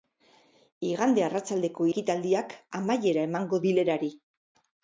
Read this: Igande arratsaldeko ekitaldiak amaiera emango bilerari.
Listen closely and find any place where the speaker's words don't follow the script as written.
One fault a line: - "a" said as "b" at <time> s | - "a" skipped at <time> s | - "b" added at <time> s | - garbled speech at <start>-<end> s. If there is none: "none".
none